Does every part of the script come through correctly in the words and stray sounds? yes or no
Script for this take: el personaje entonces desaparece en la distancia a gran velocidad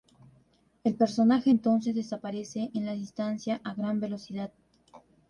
yes